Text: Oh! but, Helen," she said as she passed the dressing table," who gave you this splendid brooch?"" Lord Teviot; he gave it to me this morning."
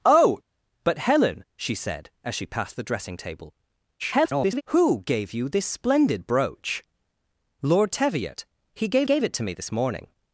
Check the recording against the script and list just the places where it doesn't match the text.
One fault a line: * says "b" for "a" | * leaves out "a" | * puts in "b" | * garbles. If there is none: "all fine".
* garbles
* puts in "gave"